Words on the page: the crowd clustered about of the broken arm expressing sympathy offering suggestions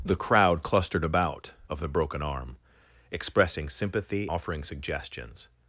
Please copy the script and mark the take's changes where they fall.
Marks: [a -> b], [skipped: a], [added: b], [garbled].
the crowd clustered about of the broken arm expressing sympathy offering suggestions